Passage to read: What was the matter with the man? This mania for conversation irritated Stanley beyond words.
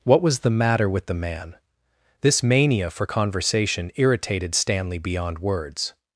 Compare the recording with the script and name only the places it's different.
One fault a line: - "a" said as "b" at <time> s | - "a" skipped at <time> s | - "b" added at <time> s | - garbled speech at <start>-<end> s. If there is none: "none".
none